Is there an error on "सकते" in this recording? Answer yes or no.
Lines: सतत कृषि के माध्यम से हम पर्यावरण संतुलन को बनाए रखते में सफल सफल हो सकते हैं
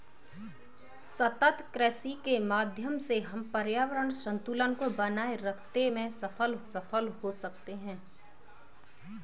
no